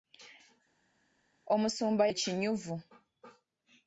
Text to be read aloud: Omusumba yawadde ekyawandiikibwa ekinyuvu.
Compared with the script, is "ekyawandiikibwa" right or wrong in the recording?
wrong